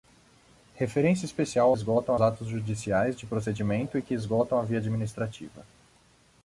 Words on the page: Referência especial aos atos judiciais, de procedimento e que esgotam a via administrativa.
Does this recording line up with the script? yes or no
no